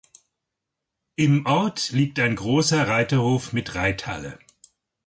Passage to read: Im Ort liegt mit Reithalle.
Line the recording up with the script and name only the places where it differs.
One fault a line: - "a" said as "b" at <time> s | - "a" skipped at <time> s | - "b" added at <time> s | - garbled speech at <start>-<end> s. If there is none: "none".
- "ein großer Reiterhof" added at 2.2 s